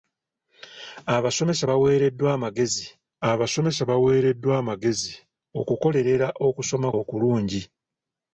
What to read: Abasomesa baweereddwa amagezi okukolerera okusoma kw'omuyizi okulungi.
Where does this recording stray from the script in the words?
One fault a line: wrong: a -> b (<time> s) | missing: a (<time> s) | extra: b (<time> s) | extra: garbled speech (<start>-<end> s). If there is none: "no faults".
extra: abasomesa baweereddwa amagezi (3.3 s)
missing: kw'omuyizi (6.9 s)